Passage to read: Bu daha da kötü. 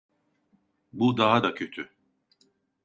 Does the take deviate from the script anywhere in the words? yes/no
no